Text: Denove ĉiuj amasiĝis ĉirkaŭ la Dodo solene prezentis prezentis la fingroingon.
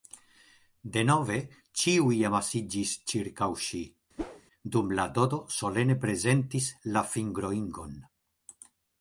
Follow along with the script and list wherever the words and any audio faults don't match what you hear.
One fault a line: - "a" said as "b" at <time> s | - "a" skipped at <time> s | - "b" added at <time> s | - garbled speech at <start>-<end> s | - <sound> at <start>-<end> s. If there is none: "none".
- "ŝi dum" added at 3.7 s
- whoosh at 4.2-4.4 s
- "prezentis" skipped at 6.7 s